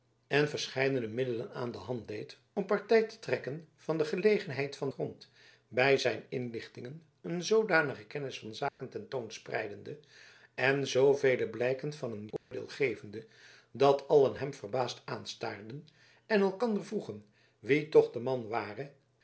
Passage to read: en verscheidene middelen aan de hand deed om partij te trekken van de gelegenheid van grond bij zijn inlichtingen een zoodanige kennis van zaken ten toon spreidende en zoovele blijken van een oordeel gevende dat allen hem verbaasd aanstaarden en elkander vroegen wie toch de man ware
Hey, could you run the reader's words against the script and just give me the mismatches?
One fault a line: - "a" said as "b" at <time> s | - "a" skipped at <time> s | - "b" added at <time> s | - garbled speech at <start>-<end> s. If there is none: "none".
none